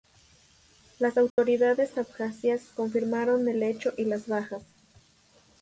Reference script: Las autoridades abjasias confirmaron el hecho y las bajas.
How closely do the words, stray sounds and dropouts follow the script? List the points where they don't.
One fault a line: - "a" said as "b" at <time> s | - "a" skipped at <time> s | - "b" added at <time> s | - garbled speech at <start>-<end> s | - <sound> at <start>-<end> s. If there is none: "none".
- dropout at 1.3-1.4 s